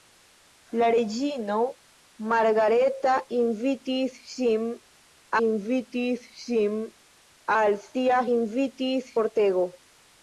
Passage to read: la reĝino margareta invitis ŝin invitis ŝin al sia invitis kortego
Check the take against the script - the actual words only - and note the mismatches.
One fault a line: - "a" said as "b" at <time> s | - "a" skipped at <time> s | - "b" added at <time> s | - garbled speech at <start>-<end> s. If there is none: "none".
none